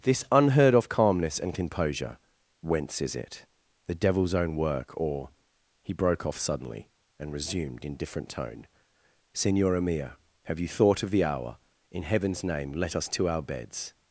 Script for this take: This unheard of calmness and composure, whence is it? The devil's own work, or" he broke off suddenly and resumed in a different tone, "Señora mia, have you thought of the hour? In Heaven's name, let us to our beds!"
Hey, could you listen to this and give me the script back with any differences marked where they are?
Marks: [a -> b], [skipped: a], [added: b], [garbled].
This unheard of calmness and composure, whence is it? The devil's own work, or" he broke off suddenly and resumed in [skipped: a] different tone, "Señora mia, have you thought of the hour? In Heaven's name, let us to our beds!"